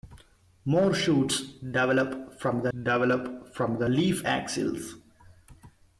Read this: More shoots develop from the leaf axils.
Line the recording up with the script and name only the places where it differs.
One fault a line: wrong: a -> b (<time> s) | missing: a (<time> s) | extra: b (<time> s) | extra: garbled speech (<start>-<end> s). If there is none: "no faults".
extra: develop from the (2.7 s)